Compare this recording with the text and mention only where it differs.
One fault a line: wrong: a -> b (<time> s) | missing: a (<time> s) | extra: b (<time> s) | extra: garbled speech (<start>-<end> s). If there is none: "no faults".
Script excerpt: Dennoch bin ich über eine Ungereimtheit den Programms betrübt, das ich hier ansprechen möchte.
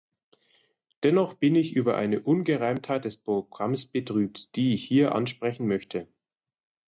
wrong: den -> des (3.0 s)
wrong: das -> die (4.5 s)